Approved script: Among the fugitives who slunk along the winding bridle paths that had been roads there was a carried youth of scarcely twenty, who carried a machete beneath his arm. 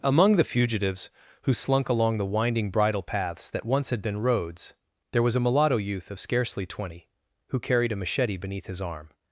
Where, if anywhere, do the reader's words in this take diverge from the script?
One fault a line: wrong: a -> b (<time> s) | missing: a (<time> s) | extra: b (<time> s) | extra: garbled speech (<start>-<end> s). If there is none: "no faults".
extra: once (3.7 s)
wrong: carried -> mulatto (5.4 s)